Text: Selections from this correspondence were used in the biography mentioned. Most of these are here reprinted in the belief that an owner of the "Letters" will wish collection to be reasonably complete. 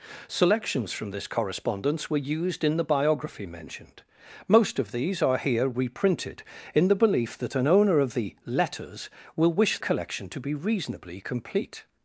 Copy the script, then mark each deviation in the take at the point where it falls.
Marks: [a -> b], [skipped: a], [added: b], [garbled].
Selections from this correspondence were used in the biography mentioned. Most of these are here reprinted in the belief that an owner of the "Letters" will wish collection to be reasonably complete.